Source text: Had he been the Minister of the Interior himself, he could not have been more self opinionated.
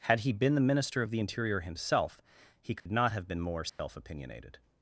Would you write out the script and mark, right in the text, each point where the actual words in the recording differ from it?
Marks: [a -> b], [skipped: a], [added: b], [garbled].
Had he been the Minister of the Interior himself, he could not have been more self opinionated.